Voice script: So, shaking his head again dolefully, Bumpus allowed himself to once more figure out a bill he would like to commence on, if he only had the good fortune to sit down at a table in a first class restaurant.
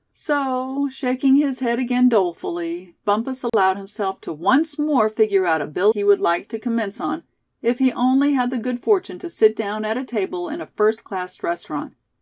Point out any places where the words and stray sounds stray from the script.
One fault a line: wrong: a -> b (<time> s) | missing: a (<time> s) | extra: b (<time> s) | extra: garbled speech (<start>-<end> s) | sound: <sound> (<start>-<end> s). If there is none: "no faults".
sound: dropout (3.5-3.5 s)